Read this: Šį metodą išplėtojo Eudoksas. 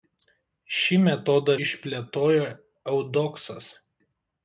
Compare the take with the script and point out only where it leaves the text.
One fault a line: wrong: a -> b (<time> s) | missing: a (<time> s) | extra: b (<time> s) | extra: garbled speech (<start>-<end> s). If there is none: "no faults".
no faults